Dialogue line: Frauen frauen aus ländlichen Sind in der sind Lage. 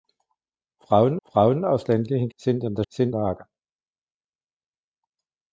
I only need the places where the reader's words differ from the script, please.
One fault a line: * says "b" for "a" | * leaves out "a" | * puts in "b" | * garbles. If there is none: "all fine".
all fine